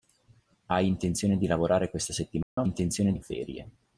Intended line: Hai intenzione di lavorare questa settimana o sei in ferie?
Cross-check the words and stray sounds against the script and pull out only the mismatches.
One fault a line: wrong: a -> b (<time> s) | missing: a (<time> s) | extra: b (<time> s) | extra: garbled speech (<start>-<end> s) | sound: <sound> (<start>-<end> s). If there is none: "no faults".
sound: dropout (2.4-2.6 s)
wrong: sei -> intenzione (2.6 s)